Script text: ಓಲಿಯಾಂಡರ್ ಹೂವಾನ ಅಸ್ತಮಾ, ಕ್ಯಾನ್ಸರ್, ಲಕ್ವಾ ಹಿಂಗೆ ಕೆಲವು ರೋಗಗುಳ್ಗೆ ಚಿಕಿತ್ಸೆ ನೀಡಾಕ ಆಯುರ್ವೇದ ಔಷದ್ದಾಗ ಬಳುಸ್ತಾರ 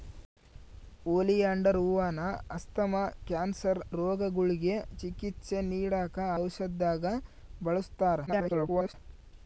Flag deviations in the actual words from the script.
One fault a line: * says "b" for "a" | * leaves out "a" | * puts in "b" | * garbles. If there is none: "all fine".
* leaves out "ಲಕ್ವಾ ಹಿಂಗೆ ಕೆಲವು"
* leaves out "ಆಯುರ್ವೇದ"
* garbles